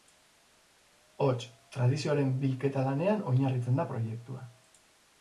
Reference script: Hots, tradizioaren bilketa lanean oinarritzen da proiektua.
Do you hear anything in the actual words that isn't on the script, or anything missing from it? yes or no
no